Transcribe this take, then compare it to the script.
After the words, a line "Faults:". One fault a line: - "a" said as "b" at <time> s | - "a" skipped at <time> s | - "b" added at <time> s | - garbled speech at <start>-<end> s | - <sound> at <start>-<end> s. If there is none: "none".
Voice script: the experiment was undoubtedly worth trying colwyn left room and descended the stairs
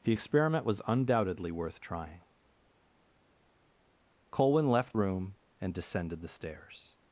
the experiment was undoubtedly worth trying colwyn left room and descended the stairs
Faults:
none